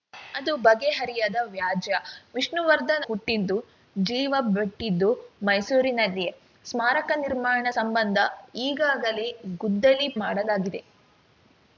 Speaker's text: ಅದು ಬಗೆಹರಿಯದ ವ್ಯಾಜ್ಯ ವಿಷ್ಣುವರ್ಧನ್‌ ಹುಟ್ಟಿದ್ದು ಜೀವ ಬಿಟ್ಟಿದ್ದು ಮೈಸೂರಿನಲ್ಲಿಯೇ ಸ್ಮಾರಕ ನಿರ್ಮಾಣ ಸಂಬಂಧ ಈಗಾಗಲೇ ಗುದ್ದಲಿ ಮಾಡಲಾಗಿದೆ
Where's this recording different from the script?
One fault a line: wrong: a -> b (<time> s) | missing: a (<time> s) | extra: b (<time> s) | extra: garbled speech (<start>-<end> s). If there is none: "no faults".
no faults